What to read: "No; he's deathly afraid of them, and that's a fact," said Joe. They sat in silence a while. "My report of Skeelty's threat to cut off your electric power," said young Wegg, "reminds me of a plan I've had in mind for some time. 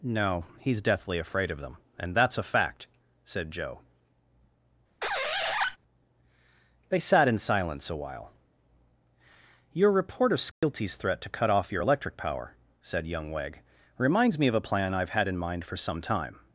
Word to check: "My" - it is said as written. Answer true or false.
false